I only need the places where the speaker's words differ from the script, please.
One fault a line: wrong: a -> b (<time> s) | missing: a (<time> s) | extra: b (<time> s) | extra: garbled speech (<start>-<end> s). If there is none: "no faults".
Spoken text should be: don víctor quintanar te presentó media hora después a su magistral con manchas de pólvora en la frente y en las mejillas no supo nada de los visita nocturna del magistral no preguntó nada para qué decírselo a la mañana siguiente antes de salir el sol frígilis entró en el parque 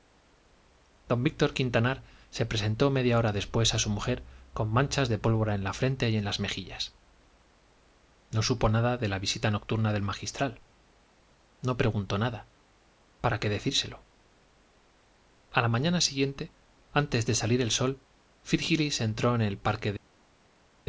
wrong: te -> se (2.3 s)
wrong: magistral -> mujer (3.9 s)
wrong: los -> la (9.1 s)